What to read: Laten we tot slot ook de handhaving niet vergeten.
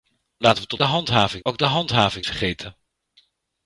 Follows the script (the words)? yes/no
no